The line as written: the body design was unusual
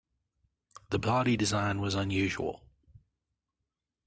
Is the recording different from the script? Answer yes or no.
no